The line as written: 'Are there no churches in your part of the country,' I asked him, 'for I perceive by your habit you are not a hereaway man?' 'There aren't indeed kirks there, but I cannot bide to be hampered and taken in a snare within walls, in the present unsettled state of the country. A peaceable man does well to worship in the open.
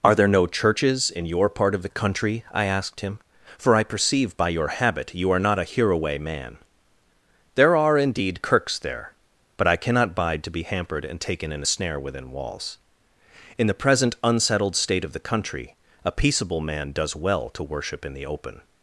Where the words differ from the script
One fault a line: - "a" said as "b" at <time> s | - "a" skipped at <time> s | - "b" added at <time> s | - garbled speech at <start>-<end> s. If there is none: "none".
- "aren't" said as "are" at 7.8 s